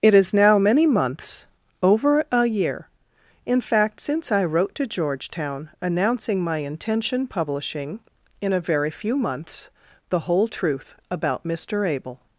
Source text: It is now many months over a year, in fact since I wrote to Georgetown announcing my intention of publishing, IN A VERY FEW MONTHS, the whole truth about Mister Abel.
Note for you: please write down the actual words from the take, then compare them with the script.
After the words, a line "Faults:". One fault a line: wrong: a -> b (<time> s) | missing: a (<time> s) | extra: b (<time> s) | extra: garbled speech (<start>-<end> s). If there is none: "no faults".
It is now many months over a year, in fact since I wrote to Georgetown announcing my intention publishing, IN A VERY FEW MONTHS, the whole truth about Mister Abel.
Faults:
missing: of (7.3 s)